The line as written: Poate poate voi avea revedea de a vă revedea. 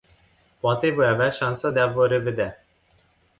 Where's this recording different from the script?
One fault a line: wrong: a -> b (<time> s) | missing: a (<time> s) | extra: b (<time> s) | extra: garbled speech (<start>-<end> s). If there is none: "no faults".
missing: poate (0.9 s)
wrong: revedea -> șansa (1.3 s)